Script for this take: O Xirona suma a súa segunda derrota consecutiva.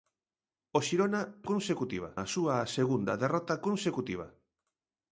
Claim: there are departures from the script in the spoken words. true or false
true